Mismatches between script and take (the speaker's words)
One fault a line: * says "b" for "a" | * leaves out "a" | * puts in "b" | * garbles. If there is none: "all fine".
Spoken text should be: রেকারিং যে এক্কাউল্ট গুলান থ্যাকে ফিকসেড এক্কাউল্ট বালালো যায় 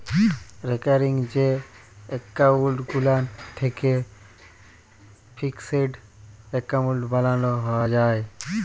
all fine